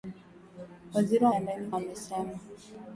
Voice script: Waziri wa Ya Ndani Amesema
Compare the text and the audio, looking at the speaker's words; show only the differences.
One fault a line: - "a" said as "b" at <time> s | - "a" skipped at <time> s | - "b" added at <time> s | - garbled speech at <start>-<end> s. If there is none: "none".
none